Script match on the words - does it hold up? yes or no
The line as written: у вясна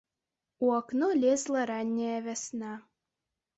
no